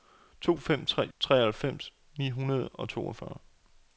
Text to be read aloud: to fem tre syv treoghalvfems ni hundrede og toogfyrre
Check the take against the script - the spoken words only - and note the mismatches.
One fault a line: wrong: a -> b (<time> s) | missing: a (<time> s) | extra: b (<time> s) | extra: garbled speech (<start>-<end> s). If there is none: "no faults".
missing: syv (1.1 s)